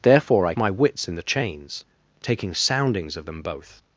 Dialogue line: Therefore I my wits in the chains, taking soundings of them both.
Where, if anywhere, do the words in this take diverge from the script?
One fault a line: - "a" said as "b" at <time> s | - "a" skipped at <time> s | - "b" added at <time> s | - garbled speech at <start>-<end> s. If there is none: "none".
none